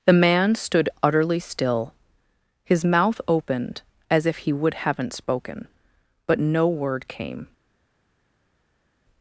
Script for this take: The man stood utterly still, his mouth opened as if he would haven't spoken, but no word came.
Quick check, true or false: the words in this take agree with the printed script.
true